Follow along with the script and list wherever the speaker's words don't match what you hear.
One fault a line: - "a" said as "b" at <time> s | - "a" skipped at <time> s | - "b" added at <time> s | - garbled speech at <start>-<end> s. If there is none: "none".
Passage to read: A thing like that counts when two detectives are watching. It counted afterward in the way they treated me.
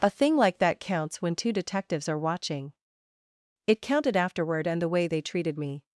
- "in" said as "and" at 4.7 s